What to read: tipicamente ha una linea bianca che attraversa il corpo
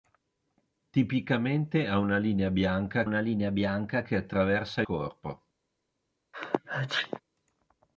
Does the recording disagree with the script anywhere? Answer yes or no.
yes